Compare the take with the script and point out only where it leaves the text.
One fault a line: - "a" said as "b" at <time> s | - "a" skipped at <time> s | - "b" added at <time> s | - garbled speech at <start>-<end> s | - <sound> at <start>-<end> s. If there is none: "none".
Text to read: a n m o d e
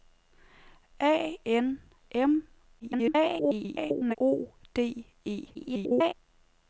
- garbled speech at 2.8-4.2 s
- garbled speech at 5.5-6.1 s